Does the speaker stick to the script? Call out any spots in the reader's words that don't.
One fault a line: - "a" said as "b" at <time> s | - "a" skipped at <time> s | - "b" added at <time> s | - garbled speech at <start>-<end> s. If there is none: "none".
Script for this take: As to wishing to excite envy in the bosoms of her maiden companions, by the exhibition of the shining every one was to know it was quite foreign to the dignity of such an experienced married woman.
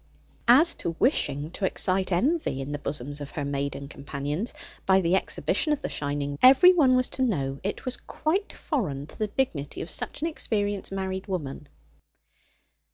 none